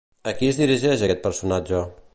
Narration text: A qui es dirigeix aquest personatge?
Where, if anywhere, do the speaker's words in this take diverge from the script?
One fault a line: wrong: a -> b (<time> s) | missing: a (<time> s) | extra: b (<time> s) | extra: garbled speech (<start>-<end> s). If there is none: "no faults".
no faults